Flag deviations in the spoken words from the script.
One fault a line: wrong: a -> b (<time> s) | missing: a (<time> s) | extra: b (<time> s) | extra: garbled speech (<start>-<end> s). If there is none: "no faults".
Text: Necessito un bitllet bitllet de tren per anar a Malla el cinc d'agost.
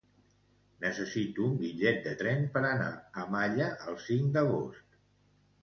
missing: bitllet (2.0 s)